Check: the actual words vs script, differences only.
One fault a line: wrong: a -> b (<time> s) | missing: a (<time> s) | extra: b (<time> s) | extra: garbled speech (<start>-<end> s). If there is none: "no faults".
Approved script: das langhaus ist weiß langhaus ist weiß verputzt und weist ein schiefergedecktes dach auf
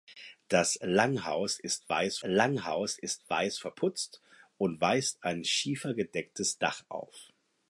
no faults